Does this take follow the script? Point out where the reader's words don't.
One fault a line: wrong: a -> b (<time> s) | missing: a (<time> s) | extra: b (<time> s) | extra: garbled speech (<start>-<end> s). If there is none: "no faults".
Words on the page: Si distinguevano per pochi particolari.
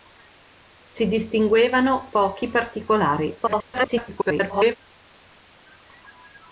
missing: per (2.1 s)
extra: garbled speech (3.4-4.8 s)